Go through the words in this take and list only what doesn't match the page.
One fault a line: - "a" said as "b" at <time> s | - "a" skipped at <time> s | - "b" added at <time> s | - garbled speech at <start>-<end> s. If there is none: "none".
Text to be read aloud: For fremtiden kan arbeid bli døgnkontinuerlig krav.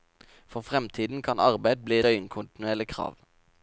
none